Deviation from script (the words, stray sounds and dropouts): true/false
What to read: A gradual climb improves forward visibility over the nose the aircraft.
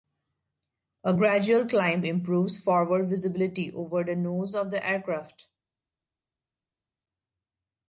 true